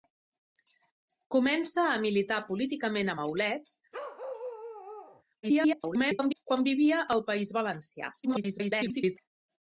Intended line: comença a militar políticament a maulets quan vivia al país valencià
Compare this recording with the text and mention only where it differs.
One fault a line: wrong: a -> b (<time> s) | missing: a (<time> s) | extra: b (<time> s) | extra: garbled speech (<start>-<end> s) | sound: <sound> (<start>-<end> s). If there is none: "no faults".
sound: bark (3.9-5.2 s)
extra: garbled speech (5.4-6.4 s)
extra: garbled speech (8.2-9.2 s)